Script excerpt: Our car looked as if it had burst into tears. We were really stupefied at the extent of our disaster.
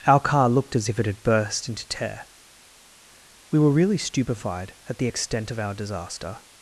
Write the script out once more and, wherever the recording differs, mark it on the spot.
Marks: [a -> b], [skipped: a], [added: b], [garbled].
Our car looked as if it had burst into [tears. -> tear] We were really stupefied at the extent of our disaster.